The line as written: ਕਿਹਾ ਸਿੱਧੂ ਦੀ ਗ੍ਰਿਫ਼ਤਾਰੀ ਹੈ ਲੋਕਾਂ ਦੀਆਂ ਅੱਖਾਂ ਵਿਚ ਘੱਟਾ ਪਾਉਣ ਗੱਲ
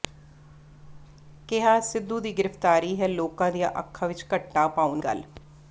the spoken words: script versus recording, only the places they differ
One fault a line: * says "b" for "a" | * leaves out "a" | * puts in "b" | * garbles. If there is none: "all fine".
all fine